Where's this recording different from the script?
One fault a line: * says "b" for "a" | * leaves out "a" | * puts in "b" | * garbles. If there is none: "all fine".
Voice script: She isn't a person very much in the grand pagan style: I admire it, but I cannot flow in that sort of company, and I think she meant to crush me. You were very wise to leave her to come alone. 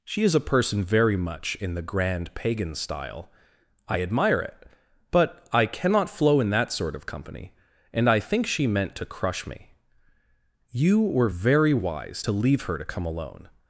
* says "is" for "isn't"